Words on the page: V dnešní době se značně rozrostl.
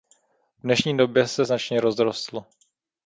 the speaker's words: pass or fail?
pass